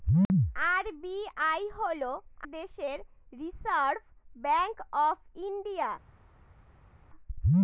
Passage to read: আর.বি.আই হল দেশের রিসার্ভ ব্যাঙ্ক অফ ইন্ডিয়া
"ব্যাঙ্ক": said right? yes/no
yes